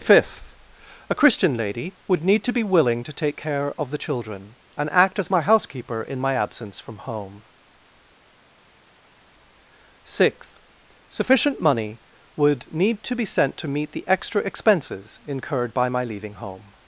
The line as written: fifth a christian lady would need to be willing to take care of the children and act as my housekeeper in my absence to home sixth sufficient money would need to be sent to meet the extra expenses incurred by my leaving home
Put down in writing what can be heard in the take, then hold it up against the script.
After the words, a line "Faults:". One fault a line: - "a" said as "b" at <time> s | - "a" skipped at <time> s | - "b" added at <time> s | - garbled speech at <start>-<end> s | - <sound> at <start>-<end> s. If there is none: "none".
fifth a christian lady would need to be willing to take care of the children and act as my housekeeper in my absence from home sixth sufficient money would need to be sent to meet the extra expenses incurred by my leaving home
Faults:
- "to" said as "from" at 6.8 s